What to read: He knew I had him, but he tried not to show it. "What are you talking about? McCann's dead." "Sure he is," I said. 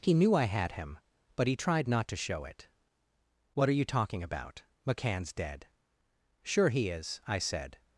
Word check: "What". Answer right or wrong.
right